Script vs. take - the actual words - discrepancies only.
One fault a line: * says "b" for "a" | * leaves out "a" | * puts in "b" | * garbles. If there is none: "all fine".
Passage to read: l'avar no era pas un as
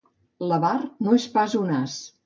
* says "és" for "era"